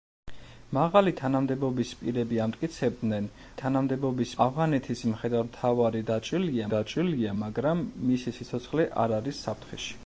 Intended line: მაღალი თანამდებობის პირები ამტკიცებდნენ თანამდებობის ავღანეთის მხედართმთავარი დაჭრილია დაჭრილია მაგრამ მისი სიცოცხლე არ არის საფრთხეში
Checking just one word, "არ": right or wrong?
right